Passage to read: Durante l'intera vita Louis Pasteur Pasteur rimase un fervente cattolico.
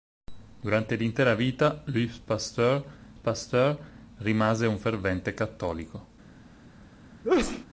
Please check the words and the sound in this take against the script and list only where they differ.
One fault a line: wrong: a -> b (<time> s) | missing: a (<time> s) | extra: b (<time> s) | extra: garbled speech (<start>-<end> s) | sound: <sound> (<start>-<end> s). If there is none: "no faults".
sound: sneeze (7.2-7.7 s)